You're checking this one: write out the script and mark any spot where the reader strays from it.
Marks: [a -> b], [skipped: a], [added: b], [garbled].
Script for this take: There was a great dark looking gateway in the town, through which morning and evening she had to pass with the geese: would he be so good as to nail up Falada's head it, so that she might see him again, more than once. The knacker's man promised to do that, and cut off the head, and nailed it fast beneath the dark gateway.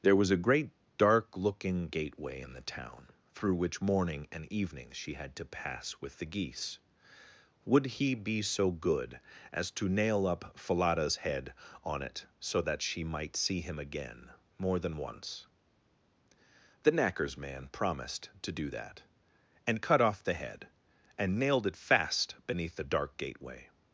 There was a great dark looking gateway in the town, through which morning and evening she had to pass with the geese: would he be so good as to nail up Falada's head [added: on] it, so that she might see him again, more than once. The knacker's man promised to do that, and cut off the head, and nailed it fast beneath the dark gateway.